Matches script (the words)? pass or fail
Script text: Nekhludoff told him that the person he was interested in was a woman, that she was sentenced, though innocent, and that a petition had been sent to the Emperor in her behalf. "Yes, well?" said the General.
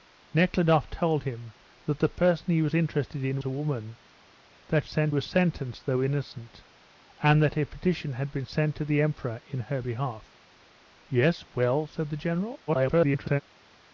fail